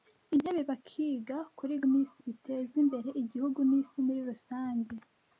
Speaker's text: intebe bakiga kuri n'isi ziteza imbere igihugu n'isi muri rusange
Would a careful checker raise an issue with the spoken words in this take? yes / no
no